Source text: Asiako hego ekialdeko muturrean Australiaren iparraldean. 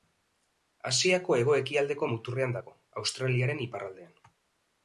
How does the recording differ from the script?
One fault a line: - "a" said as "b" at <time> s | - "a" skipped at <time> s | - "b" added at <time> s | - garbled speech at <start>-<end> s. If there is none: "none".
- "dago" added at 2.6 s